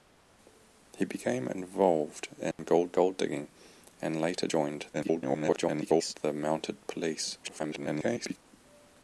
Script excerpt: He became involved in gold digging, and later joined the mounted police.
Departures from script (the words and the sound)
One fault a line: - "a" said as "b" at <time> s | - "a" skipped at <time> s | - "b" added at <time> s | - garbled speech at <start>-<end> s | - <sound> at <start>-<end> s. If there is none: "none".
- dropout at 2.5-2.6 s
- "gold" added at 2.9 s
- garbled speech at 4.9-6.1 s
- garbled speech at 7.4-8.4 s